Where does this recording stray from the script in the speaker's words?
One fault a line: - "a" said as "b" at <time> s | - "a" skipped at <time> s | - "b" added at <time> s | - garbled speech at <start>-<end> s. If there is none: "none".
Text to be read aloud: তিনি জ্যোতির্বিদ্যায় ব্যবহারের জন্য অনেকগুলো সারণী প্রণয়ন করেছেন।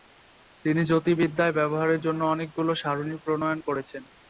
none